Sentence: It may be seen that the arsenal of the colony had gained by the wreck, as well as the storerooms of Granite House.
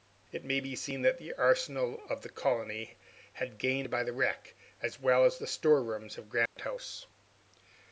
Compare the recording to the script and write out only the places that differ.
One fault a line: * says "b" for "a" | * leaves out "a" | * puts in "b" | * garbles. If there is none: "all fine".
all fine